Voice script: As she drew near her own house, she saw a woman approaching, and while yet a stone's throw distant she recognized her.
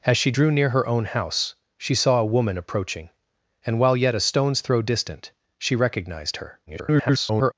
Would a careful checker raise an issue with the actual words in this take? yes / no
yes